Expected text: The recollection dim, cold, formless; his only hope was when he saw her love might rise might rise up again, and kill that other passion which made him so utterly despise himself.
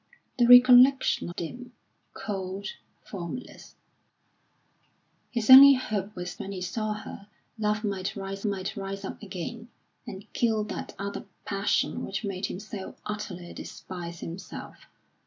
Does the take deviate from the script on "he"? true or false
false